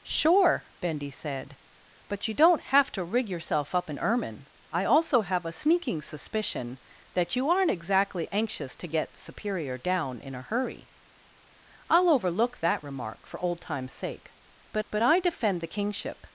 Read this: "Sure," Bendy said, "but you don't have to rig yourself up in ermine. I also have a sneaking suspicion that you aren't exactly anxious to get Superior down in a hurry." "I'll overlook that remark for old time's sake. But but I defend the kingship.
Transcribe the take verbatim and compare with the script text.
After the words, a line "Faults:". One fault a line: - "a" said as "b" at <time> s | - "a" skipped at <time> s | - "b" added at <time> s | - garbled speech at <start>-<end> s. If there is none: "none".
"Sure," Bendy said, "but you don't have to rig yourself up in ermine. I also have a sneaking suspicion that you aren't exactly anxious to get Superior down in a hurry." "I'll overlook that remark for old time's sake. But but I defend the kingship.
Faults:
none